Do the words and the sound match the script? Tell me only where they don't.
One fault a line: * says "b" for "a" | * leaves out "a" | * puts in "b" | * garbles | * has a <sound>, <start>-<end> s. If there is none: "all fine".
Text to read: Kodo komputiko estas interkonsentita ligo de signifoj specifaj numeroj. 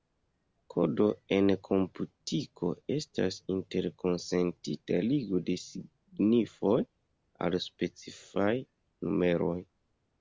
* puts in "en"
* puts in "al"